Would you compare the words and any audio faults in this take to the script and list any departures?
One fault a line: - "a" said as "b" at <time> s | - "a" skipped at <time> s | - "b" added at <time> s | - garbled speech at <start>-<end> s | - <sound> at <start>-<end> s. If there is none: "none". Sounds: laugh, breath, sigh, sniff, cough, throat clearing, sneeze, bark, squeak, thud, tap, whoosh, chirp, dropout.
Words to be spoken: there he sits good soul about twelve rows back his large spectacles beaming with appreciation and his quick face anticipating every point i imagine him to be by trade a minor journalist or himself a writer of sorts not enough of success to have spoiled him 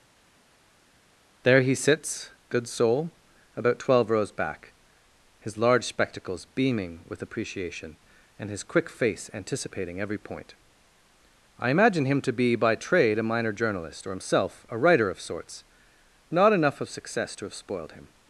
none